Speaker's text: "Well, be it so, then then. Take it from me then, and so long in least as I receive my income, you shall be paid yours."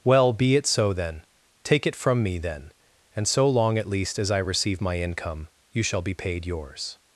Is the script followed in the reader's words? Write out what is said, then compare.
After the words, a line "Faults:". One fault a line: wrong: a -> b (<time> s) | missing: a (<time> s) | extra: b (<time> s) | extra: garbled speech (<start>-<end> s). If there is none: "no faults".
"Well, be it so, then. Take it from me then, and so long at least as I receive my income, you shall be paid yours."
Faults:
missing: then (1.2 s)
wrong: in -> at (3.8 s)